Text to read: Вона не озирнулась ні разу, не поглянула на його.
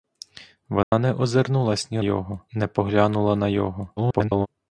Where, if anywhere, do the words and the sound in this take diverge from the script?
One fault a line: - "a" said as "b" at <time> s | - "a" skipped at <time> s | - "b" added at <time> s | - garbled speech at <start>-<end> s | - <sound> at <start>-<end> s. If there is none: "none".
- dropout at 0.8-0.9 s
- "разу" said as "його" at 2.0 s
- garbled speech at 4.0-4.5 s